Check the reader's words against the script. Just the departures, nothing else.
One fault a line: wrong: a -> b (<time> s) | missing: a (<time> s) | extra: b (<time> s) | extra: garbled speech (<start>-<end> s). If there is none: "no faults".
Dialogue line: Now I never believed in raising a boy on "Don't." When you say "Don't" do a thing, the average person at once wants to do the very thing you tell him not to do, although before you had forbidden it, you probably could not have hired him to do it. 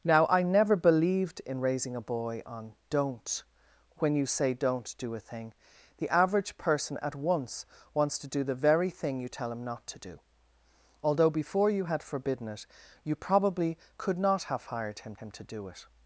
extra: him (15.1 s)